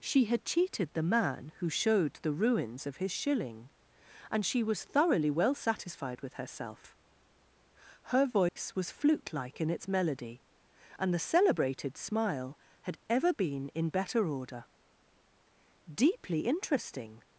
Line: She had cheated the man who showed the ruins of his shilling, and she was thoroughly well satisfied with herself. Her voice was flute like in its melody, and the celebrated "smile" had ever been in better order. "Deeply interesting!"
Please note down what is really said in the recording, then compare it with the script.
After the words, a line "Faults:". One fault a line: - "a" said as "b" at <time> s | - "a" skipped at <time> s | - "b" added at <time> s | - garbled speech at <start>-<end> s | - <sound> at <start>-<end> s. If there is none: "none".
She had cheated the man who showed the ruins of his shilling, and she was thoroughly well satisfied with herself. Her voice was flute like in its melody, and the celebrated "smile" had ever been in better order. "Deeply interesting!"
Faults:
- dropout at 8.5-8.6 s